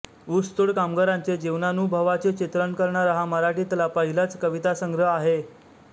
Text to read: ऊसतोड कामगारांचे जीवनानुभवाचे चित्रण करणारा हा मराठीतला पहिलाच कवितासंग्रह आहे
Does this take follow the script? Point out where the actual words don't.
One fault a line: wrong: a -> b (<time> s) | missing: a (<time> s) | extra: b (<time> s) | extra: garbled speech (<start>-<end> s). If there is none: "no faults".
no faults